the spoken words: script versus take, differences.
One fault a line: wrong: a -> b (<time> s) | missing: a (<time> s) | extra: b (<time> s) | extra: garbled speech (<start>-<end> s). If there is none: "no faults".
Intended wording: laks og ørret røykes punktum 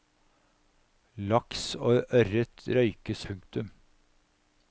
no faults